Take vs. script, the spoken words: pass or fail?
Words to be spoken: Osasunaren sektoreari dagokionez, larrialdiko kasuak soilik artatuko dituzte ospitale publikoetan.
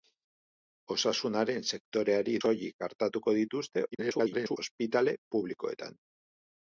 fail